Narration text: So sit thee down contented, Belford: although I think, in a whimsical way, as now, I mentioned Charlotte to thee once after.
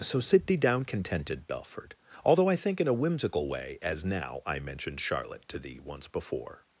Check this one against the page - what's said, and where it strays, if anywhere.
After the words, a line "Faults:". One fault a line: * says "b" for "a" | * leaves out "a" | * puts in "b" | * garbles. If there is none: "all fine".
So sit thee down contented, Belford: although I think, in a whimsical way, as now, I mentioned Charlotte to thee once before.
Faults:
* says "before" for "after"